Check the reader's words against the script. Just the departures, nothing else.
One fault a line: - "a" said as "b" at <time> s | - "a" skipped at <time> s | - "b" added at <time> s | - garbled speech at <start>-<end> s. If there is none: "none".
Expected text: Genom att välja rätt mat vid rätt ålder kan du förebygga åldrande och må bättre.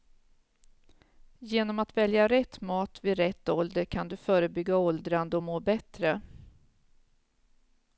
none